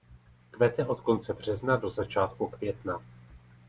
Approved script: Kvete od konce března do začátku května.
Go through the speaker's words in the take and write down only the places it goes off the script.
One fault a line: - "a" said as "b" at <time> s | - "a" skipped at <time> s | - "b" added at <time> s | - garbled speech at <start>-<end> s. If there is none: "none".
none